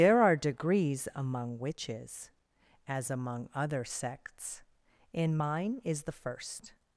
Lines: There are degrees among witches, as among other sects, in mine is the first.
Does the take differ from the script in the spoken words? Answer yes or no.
no